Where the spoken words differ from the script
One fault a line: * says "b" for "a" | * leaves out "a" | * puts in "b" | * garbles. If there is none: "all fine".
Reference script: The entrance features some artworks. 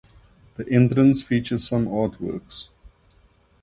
all fine